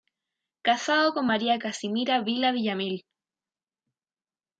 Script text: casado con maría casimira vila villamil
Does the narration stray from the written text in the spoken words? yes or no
no